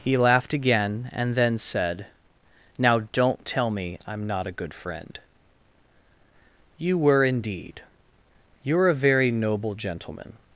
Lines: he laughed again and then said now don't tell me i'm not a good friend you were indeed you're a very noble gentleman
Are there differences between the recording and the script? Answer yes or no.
no